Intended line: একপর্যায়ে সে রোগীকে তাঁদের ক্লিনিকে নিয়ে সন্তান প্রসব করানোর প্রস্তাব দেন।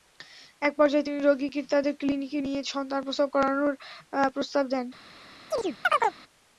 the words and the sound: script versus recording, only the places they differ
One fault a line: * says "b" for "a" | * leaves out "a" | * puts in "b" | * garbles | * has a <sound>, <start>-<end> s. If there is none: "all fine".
* says "তিনি" for "সে"
* has a chirp, 5.5-6.2 s